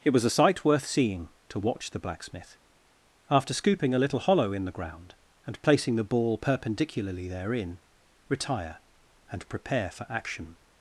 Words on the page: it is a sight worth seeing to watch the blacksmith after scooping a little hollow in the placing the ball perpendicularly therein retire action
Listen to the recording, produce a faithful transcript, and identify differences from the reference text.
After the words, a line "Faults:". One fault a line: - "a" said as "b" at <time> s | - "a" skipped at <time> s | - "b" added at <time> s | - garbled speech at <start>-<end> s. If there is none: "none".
it was a sight worth seeing to watch the blacksmith after scooping a little hollow in the ground and placing the ball perpendicularly therein retire and prepare for action
Faults:
- "is" said as "was" at 0.1 s
- "ground and" added at 4.7 s
- "and prepare for" added at 9.3 s